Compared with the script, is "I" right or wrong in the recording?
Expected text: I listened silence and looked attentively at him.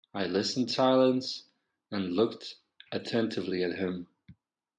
right